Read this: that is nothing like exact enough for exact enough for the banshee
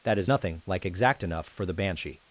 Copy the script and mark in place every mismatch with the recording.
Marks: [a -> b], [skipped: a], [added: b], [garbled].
that is nothing like exact enough for [skipped: exact enough for] the banshee